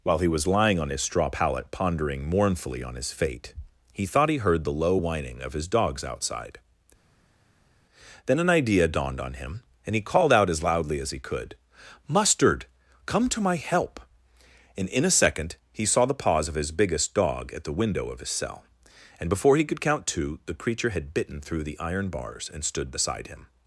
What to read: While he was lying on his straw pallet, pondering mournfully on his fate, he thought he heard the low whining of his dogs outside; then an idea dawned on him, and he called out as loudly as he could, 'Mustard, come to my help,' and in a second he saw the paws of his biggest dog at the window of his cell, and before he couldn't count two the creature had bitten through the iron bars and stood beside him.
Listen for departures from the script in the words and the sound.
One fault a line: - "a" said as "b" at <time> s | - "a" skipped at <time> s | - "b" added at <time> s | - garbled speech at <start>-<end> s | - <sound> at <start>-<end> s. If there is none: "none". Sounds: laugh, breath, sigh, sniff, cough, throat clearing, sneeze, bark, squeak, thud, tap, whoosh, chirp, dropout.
- "couldn't" said as "could" at 19.7 s